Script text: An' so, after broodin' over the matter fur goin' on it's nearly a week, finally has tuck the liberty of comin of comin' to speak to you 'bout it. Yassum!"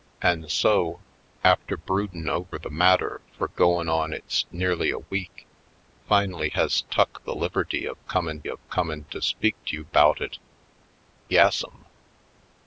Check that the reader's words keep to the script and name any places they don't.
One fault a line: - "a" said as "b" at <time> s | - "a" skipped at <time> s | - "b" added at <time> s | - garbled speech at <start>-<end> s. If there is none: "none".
none